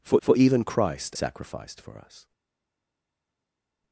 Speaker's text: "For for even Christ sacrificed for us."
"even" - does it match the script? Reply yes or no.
yes